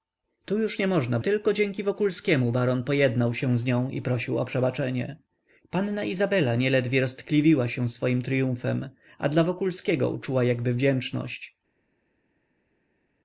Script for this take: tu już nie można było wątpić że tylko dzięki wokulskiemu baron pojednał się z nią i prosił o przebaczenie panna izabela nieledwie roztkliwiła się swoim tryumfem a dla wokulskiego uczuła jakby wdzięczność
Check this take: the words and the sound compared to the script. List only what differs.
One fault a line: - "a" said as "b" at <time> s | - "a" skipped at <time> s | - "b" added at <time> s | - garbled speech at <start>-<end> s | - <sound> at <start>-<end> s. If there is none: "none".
- "było wątpić że" skipped at 1.2 s